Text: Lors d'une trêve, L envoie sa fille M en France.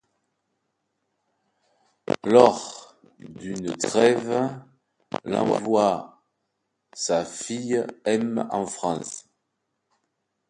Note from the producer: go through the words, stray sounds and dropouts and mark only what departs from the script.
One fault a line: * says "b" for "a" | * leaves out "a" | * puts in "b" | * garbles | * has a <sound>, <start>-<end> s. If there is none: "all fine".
all fine